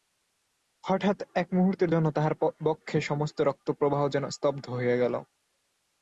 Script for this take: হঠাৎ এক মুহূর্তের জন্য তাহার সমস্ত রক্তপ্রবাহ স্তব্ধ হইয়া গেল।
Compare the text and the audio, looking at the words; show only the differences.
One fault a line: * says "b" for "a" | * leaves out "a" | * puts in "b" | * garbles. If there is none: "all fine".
* puts in "বক্ষে"
* puts in "যেন"